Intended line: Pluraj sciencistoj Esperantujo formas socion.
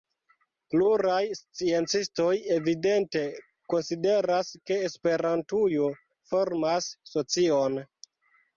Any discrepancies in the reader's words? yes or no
yes